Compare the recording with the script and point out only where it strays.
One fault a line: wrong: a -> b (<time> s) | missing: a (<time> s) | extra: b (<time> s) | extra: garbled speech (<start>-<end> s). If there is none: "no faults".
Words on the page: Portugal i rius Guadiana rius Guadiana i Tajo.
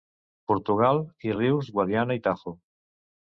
missing: rius Guadiana (2.2 s)